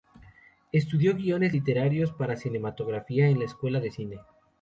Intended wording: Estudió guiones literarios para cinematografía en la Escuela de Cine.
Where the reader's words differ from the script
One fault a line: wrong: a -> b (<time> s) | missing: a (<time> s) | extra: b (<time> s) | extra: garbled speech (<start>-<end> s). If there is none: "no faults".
no faults